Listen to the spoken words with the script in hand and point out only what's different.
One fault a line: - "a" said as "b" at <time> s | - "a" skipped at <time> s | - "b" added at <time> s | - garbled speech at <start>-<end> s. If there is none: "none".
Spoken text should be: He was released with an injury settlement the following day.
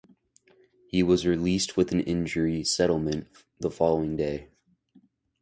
none